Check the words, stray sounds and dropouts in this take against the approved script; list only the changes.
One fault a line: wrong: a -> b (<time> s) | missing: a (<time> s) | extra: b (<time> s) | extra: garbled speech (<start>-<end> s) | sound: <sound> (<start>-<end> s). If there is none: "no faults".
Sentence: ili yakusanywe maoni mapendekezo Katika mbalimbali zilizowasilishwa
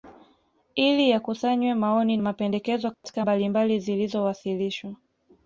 sound: dropout (2.9-3.0 s)